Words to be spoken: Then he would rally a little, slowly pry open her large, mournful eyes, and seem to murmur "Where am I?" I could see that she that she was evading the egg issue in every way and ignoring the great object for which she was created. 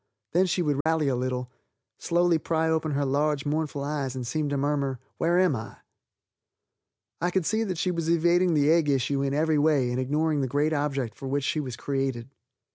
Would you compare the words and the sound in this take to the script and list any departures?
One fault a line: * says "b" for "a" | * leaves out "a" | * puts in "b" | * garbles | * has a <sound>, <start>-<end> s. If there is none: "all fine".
* says "she" for "he"
* has a dropout, 0.8-0.9 s
* leaves out "that she"